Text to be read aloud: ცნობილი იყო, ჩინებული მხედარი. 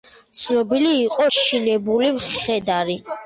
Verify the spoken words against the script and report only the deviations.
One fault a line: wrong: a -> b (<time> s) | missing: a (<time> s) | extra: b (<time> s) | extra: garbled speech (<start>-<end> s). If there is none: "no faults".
no faults